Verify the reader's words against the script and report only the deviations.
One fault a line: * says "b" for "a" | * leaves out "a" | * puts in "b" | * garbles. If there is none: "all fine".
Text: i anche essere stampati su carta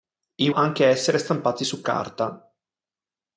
all fine